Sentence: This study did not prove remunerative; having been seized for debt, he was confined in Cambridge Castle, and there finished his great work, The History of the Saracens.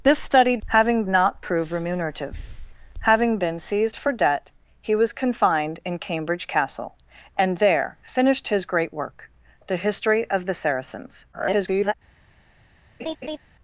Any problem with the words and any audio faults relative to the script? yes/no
yes